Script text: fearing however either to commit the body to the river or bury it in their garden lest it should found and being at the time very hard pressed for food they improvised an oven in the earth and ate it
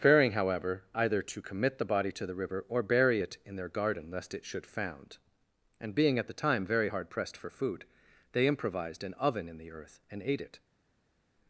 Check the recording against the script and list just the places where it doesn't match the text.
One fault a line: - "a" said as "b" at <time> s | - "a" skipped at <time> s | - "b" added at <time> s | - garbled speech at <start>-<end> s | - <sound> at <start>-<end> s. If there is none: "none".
none